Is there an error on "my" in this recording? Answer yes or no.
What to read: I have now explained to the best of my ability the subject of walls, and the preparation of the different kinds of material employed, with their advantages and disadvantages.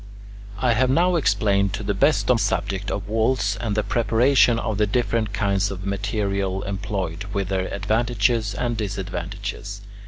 yes